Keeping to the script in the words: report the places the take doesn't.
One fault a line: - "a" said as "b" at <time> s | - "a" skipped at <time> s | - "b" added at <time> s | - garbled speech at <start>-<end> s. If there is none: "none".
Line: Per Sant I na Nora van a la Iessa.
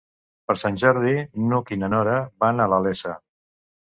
- "Jordi n'Hug" added at 0.8 s